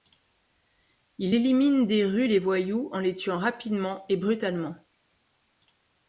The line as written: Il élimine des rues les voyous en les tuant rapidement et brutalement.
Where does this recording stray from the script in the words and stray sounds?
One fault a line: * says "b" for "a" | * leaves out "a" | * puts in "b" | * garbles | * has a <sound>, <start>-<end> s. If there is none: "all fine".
all fine